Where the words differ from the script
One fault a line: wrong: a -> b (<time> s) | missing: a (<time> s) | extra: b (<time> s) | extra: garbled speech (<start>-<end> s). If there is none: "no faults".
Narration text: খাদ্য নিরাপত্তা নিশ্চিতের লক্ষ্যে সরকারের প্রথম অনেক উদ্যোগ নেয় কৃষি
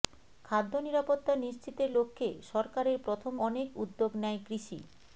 no faults